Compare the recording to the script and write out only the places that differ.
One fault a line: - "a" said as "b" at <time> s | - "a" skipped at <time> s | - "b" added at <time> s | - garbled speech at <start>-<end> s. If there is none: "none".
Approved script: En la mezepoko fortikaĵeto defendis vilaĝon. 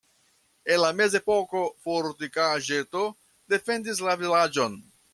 - "la" added at 4.1 s